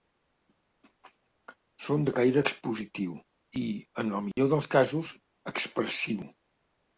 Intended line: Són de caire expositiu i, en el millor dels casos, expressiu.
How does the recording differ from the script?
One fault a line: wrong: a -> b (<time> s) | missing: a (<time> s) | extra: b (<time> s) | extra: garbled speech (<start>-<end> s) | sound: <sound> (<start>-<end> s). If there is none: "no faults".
sound: dropout (4.3-4.4 s)